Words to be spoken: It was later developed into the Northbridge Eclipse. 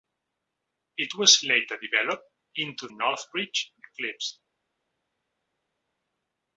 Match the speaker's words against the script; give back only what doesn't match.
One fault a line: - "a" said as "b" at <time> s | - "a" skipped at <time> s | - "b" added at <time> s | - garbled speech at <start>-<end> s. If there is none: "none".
- "the" skipped at 2.9 s